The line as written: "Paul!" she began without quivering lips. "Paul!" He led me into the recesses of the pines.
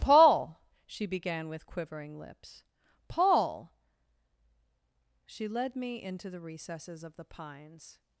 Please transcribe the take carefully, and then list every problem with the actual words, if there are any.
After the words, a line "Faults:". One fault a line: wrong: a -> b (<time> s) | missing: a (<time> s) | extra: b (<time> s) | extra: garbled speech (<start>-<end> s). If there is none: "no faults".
"Paul!" she began with quivering lips. "Paul!" She led me into the recesses of the pines.
Faults:
wrong: without -> with (1.5 s)
wrong: He -> She (5.2 s)